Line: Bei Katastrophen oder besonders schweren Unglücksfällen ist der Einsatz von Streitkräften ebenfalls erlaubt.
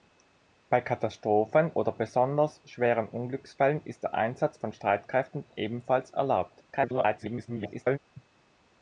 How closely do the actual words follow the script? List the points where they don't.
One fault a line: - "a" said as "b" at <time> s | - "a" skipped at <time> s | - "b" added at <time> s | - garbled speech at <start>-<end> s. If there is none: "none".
- garbled speech at 6.7-8.0 s